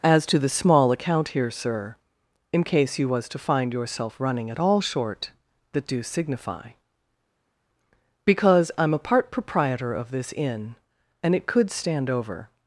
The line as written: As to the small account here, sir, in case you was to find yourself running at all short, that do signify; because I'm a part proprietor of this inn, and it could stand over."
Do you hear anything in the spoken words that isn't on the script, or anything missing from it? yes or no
no